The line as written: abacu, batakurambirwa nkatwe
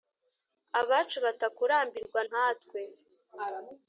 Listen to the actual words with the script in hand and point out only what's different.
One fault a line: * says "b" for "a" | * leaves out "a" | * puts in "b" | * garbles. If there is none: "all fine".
all fine